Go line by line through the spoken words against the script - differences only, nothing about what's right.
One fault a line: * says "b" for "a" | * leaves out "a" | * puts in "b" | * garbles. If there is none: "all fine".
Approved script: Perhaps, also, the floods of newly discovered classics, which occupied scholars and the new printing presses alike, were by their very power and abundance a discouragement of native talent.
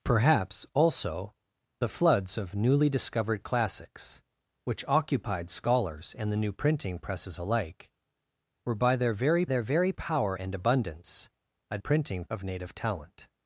* puts in "their very"
* says "printing" for "discouragement"